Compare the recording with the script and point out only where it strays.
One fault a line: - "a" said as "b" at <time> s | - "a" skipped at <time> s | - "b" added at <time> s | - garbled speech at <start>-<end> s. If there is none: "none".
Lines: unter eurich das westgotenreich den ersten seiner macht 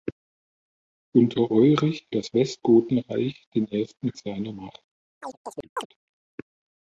none